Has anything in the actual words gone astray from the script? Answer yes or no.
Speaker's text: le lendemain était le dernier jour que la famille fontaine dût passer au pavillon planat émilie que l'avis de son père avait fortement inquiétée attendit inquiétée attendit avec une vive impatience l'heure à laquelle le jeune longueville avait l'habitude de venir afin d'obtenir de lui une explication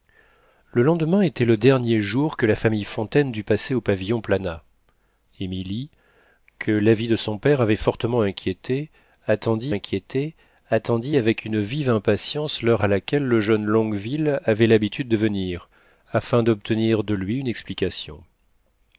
no